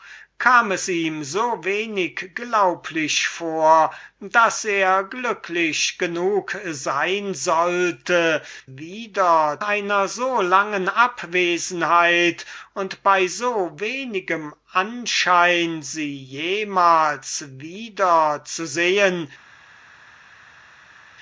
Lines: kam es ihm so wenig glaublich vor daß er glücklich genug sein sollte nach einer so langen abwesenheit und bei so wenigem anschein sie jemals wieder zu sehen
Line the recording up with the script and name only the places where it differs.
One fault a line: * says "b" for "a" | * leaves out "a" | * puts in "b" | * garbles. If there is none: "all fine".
* says "wieder" for "nach"